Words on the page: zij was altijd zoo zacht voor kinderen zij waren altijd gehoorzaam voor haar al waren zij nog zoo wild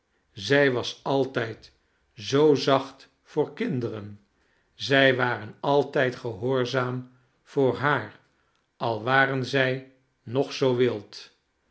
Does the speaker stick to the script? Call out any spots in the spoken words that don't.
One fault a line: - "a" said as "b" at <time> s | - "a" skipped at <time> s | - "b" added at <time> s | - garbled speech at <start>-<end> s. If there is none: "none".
none